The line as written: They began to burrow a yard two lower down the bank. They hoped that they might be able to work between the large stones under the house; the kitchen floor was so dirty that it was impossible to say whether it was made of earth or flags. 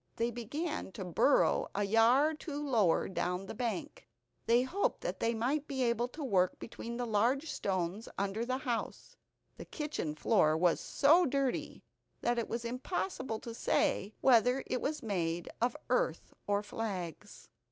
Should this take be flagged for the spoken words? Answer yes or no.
no